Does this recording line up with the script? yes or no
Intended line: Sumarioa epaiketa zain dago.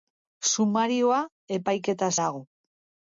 no